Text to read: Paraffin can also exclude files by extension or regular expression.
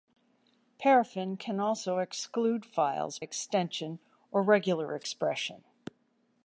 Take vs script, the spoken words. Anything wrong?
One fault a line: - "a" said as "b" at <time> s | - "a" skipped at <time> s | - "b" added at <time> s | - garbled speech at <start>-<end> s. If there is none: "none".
- "by" skipped at 3.2 s